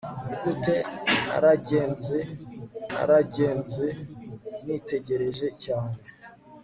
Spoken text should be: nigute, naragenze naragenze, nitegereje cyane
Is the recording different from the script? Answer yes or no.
no